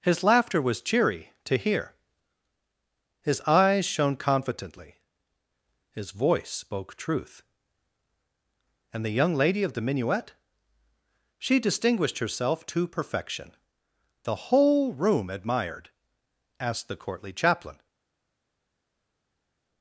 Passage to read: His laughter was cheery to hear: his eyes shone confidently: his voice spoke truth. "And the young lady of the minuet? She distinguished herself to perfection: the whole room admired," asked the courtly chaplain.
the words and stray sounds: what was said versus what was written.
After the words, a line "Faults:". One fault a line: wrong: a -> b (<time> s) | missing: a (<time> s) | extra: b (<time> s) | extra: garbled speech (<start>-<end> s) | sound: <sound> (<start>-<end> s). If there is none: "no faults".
His laughter was cheery to hear: his eyes shone confidently: his voice spoke truth. "And the young lady of the minuet? She distinguished herself to perfection: the whole room admired," asked the courtly chaplain.
Faults:
no faults